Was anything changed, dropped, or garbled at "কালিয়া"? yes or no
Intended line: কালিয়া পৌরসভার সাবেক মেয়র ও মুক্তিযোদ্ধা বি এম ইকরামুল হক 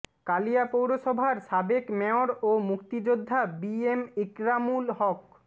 no